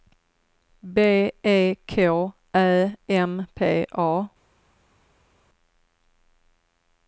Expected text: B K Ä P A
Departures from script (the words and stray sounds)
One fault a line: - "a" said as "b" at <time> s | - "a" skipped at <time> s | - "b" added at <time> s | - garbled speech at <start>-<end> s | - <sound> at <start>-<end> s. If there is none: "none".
- "E" added at 1.4 s
- "M" added at 3.1 s